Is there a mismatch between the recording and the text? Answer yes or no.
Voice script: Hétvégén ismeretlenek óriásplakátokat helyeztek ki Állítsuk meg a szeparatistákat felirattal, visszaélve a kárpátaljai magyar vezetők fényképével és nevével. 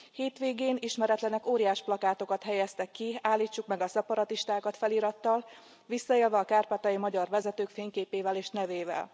no